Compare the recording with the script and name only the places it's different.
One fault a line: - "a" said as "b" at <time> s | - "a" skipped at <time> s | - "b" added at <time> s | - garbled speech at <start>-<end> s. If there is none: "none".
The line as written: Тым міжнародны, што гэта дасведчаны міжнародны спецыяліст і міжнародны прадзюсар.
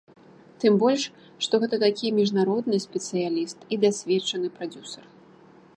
- "міжнародны" said as "больш" at 0.8 s
- "дасведчаны" said as "такі" at 1.8 s
- "міжнародны" said as "дасведчаны" at 3.9 s